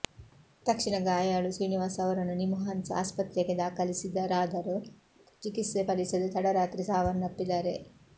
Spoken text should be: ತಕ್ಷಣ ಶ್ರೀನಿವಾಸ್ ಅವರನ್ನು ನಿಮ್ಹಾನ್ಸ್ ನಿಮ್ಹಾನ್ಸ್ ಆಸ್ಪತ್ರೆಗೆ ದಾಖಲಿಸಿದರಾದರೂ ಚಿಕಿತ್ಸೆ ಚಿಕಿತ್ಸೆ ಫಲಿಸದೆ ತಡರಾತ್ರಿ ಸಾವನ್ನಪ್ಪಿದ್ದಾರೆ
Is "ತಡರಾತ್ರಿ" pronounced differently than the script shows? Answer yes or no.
no